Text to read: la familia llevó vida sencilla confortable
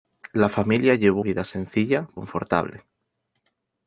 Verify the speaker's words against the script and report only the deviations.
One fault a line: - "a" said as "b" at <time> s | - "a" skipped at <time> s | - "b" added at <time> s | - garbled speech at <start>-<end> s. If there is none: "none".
none